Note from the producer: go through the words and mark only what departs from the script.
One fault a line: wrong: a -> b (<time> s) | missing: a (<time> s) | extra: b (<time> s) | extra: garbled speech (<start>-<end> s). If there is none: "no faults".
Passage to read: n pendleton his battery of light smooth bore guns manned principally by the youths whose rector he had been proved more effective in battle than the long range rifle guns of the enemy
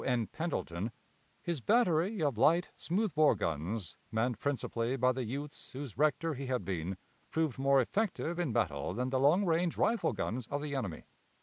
no faults